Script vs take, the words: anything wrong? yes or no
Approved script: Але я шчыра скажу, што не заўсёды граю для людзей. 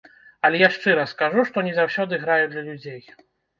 no